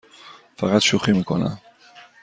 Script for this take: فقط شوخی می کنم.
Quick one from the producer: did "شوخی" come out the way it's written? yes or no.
yes